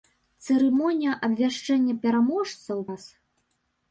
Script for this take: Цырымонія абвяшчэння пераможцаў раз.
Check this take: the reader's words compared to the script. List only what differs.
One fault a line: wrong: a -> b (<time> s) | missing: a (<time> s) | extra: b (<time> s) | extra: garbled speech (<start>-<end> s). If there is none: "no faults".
no faults